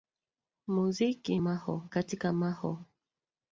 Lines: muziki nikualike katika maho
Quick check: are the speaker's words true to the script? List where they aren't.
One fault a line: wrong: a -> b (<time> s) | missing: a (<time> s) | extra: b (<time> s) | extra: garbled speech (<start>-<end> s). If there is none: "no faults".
wrong: nikualike -> maho (1.4 s)